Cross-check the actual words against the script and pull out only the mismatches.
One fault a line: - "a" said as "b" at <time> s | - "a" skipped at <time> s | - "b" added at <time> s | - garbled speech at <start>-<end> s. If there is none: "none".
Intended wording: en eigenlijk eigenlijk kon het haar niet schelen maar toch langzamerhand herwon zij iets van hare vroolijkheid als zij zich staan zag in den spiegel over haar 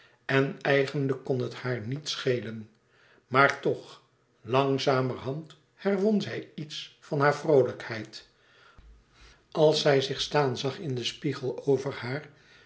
- "eigenlijk" skipped at 1.2 s